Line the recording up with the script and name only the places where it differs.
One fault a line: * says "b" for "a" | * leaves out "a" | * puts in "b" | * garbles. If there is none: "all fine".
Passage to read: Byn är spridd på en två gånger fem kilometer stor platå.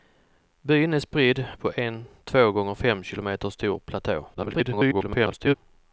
* garbles